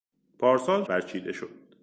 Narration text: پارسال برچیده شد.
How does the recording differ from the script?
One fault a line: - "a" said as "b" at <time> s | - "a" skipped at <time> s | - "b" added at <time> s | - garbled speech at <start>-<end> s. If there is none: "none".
none